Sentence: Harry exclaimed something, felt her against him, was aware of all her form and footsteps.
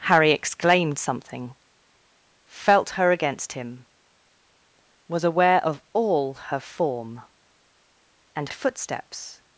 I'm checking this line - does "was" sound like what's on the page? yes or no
yes